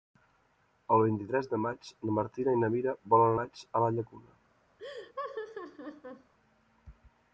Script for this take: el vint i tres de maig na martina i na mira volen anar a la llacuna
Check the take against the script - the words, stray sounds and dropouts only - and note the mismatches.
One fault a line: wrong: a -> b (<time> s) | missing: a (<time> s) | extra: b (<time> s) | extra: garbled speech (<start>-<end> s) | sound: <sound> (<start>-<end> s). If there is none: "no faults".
wrong: anar -> maig (3.4 s)
sound: laugh (4.8-6.3 s)